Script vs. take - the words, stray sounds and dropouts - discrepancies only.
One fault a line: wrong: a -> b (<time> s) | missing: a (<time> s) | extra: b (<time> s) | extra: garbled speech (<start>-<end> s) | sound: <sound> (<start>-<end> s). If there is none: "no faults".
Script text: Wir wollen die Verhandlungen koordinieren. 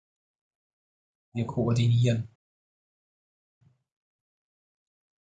missing: wollen die Verhandlungen (1.5 s)